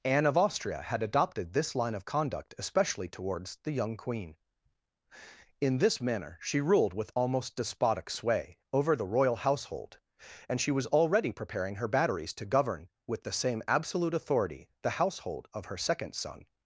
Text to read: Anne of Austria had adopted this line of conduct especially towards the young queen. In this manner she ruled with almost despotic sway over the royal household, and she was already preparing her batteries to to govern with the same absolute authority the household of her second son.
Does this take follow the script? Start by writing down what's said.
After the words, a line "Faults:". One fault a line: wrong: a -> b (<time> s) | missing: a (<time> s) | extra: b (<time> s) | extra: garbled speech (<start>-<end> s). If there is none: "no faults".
Anne of Austria had adopted this line of conduct especially towards the young queen. In this manner she ruled with almost despotic sway over the royal household, and she was already preparing her batteries to govern with the same absolute authority the household of her second son.
Faults:
missing: to (12.5 s)